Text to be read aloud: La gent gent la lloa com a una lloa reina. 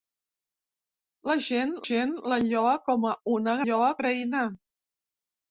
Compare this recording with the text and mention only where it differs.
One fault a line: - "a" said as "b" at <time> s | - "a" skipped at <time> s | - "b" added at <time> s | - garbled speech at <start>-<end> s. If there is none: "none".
none